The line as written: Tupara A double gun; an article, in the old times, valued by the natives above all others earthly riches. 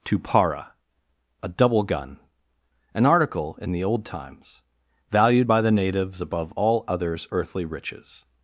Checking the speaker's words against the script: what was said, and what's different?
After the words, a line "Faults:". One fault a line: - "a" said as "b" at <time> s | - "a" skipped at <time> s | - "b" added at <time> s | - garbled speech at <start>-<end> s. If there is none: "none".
Tupara A double gun; an article, in the old times, valued by the natives above all others earthly riches.
Faults:
none